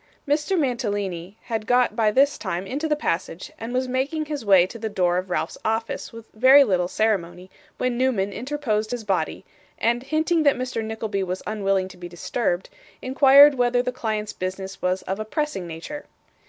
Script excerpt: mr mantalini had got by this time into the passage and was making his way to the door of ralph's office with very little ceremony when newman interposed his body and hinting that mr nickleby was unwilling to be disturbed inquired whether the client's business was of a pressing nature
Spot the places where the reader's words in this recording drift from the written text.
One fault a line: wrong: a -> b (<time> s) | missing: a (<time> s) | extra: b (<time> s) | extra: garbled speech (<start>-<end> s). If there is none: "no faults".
no faults